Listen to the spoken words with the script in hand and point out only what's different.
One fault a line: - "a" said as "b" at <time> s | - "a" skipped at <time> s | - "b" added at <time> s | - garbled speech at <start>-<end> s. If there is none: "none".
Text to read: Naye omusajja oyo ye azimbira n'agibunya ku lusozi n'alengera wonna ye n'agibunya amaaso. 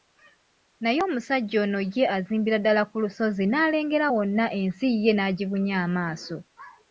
- "oyo" said as "ono" at 1.6 s
- "n'agibunya" said as "ddala" at 2.6 s
- "ensi" added at 4.6 s